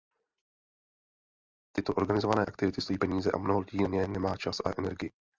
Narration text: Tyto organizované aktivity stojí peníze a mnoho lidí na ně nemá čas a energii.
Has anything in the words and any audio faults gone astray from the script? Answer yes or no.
no